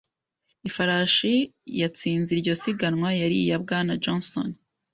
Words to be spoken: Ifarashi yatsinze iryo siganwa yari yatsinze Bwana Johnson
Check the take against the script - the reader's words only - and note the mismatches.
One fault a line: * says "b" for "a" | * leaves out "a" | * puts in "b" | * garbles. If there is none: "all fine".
* says "iya" for "yatsinze"